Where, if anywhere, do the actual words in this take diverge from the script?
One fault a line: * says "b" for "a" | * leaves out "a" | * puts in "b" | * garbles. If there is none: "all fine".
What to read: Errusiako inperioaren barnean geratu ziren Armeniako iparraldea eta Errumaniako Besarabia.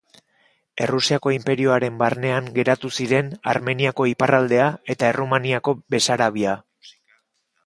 all fine